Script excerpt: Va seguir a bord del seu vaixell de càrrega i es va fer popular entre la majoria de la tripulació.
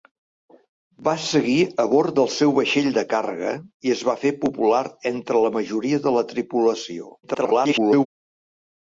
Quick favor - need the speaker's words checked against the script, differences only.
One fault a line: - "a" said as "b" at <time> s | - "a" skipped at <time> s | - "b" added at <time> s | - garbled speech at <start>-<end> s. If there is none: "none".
- garbled speech at 7.2-8.1 s